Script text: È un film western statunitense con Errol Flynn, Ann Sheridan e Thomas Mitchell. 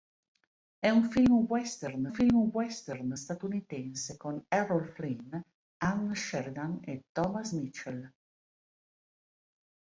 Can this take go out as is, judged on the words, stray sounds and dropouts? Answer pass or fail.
fail